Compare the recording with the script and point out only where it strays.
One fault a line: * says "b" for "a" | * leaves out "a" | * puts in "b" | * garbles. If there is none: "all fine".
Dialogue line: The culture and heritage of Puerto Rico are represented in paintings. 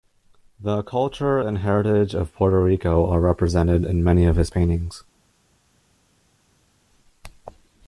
* puts in "many of his"